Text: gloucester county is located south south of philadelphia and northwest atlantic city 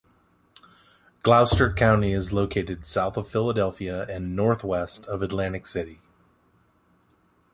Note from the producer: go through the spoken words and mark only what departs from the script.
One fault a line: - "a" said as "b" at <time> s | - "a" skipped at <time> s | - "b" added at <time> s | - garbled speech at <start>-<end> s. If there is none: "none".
- "south" skipped at 3.2 s
- "of" added at 5.0 s